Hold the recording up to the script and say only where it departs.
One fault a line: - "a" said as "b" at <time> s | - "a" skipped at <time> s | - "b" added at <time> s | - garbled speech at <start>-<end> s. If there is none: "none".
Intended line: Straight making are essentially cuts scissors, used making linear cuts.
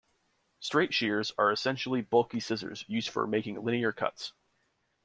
- "making" said as "shears" at 0.9 s
- "cuts" said as "bulky" at 2.0 s
- "for" added at 3.1 s